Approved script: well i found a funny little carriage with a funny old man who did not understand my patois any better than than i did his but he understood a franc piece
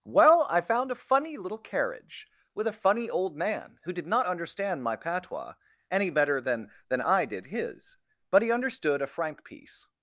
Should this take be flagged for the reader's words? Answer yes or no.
no